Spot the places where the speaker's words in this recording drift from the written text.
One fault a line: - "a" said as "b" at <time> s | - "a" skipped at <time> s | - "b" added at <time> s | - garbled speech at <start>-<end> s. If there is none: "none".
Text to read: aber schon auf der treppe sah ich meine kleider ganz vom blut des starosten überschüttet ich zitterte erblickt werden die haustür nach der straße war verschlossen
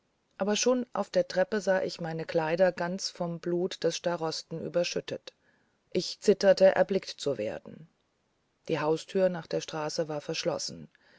- "zu" added at 7.1 s